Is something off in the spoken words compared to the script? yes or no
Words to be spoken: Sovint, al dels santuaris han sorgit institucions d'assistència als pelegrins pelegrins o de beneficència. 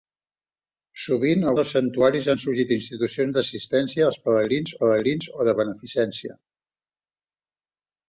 no